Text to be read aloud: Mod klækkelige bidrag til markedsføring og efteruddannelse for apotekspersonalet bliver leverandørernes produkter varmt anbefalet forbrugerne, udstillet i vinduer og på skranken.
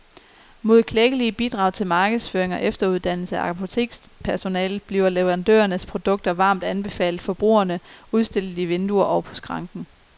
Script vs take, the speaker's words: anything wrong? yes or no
yes